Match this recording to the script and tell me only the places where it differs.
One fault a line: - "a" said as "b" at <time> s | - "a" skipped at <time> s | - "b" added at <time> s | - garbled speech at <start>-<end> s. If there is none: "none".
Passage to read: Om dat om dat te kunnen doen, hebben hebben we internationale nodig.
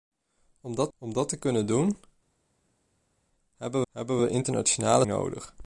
none